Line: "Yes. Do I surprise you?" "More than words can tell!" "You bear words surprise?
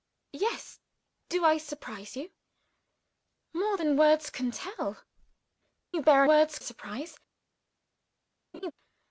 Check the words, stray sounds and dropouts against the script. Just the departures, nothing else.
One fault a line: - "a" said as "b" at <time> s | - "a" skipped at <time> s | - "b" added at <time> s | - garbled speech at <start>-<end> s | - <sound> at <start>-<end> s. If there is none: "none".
- laugh at 8.5-8.7 s